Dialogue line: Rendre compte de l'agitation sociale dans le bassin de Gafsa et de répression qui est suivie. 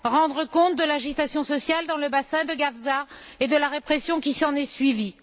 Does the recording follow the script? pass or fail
fail